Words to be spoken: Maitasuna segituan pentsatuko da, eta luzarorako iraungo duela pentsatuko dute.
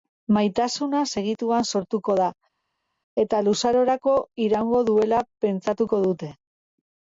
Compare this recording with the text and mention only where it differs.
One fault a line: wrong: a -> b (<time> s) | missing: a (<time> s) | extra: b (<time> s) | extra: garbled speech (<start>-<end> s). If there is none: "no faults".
wrong: pentsatuko -> sortuko (1.7 s)